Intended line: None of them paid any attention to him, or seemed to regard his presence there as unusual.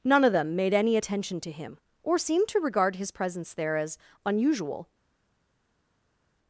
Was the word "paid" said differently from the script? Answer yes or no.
yes